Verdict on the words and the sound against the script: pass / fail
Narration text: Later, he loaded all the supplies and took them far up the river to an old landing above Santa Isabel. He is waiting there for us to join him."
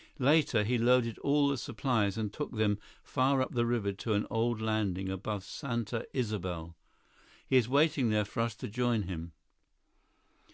pass